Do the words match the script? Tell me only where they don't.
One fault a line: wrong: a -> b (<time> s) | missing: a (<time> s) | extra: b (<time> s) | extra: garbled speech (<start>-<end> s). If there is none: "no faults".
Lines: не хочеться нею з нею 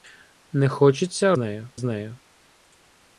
no faults